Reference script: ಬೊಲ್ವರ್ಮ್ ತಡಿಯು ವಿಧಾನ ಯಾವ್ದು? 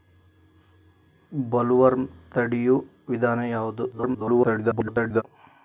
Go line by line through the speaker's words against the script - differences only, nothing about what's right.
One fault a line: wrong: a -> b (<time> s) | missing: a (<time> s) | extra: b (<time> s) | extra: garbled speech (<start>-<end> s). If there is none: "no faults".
extra: garbled speech (3.9-5.2 s)